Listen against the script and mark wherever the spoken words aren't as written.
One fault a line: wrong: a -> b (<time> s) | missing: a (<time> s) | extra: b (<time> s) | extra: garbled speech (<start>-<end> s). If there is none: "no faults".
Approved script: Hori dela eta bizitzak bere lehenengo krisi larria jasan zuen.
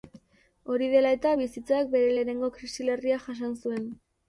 no faults